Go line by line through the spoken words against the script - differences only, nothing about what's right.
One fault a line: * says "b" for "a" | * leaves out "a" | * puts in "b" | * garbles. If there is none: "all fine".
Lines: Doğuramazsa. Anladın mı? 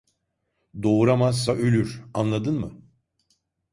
* puts in "ölür"